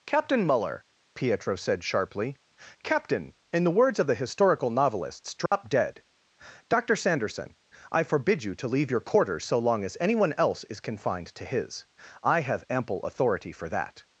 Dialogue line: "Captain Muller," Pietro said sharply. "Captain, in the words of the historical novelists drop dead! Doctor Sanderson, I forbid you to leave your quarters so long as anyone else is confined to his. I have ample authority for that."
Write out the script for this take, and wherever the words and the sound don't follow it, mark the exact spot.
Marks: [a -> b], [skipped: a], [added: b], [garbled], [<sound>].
"Captain Muller," Pietro said sharply. "Captain, in the words of the historical novelists drop [dropout] dead! Doctor Sanderson, I forbid you to leave your quarters so long as anyone else is confined to his. I have ample authority for that."